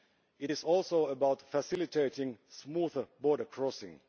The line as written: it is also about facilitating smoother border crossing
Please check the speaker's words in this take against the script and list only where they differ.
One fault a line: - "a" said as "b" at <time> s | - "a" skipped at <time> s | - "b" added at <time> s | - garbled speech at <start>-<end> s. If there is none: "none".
none